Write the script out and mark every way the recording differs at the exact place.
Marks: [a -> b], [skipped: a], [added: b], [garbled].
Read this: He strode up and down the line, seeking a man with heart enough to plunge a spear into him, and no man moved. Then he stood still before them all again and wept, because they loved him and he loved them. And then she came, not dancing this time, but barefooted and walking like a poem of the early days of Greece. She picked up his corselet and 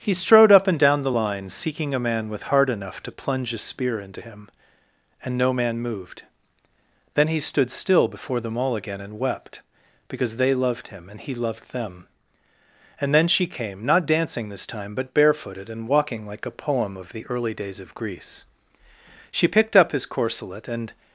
He strode up and down the line, seeking a man with heart enough to plunge a spear into him, and no man moved. Then he stood still before them all again and wept, because they loved him and he loved them. And then she came, not dancing this time, but barefooted and walking like a poem of the early days of Greece. She picked up his corselet and